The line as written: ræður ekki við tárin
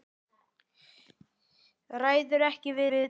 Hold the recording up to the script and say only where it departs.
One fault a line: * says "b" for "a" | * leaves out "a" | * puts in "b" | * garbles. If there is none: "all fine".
* puts in "við"